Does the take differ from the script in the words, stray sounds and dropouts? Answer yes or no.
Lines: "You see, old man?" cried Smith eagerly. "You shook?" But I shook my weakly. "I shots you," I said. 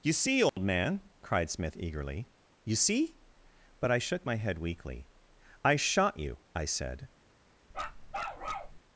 yes